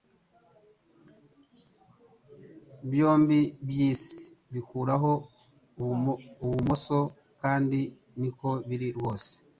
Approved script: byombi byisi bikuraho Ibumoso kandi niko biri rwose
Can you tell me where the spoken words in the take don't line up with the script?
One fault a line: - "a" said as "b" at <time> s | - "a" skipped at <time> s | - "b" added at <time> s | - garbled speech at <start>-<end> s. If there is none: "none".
none